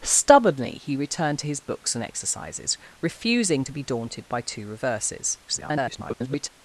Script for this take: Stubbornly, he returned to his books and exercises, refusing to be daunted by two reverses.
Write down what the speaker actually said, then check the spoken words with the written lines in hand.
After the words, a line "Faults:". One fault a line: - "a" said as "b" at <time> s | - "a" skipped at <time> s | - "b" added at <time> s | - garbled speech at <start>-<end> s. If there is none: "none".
Stubbornly, he returned to his books and exercises, refusing to be daunted by two reverses. [garbled]
Faults:
- garbled speech at 5.5-6.5 s